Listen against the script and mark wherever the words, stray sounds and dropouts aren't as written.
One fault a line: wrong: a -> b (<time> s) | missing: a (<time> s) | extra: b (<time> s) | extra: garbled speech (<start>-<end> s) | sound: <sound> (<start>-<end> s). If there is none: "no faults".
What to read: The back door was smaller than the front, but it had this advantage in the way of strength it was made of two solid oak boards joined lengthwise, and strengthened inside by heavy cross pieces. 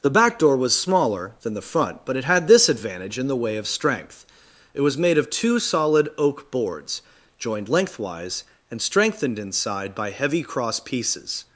no faults